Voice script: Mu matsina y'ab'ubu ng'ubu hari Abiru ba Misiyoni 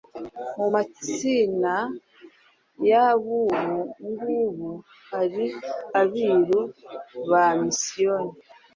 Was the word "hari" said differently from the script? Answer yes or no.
no